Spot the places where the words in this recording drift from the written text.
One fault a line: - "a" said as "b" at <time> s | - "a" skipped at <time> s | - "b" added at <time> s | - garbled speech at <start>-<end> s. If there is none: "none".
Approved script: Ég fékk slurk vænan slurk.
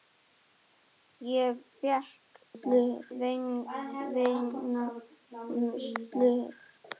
none